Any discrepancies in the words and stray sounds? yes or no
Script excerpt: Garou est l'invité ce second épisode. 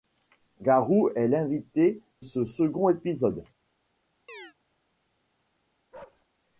yes